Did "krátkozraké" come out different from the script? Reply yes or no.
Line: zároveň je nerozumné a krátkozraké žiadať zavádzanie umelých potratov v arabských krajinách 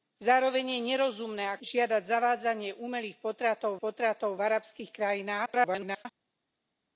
yes